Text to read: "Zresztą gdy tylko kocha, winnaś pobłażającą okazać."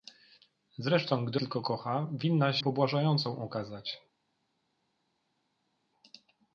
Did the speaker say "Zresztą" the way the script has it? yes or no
yes